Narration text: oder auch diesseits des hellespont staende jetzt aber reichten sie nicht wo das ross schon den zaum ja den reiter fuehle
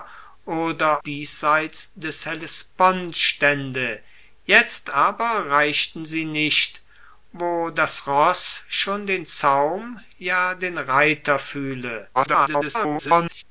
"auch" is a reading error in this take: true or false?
true